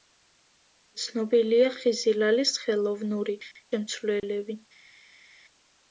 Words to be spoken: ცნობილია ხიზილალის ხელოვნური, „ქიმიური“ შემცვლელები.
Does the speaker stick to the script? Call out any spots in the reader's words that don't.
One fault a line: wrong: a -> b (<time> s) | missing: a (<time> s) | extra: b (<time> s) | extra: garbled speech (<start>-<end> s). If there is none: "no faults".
missing: ქიმიური (3.4 s)